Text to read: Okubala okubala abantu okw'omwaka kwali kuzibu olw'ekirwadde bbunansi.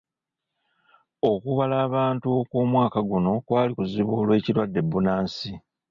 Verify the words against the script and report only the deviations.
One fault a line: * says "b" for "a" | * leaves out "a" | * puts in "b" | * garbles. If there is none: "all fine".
* leaves out "okubala"
* puts in "guno"